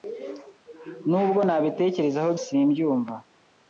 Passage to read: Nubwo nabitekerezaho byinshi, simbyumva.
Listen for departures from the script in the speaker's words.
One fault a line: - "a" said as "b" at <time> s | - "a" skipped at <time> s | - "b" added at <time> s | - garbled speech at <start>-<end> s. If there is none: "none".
- "byinshi" skipped at 2.3 s